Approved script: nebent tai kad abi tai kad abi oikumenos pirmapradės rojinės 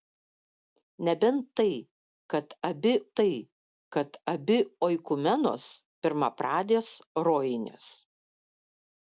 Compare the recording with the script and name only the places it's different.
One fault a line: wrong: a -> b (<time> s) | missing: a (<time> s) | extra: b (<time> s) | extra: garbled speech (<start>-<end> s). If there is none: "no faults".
no faults